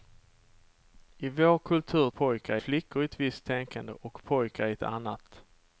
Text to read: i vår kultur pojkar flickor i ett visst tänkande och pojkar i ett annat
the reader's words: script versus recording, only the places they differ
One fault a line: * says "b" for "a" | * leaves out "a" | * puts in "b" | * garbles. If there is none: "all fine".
all fine